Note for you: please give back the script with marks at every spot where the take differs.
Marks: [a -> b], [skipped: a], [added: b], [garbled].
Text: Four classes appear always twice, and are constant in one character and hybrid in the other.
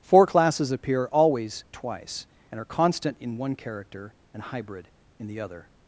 Four classes appear always twice, and are constant in one character and hybrid in the other.